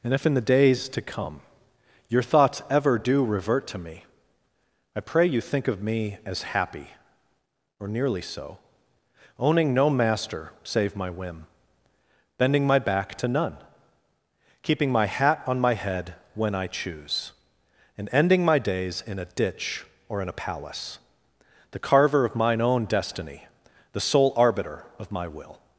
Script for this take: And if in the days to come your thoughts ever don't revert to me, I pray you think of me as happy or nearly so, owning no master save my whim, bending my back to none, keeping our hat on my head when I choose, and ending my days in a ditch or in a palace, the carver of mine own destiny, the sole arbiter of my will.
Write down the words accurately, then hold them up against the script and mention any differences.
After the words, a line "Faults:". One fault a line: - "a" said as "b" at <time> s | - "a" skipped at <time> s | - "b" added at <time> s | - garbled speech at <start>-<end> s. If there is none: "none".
And if in the days to come your thoughts ever do revert to me, I pray you think of me as happy or nearly so, owning no master save my whim, bending my back to none, keeping my hat on my head when I choose, and ending my days in a ditch or in a palace, the carver of mine own destiny, the sole arbiter of my will.
Faults:
- "don't" said as "do" at 3.0 s
- "our" said as "my" at 14.9 s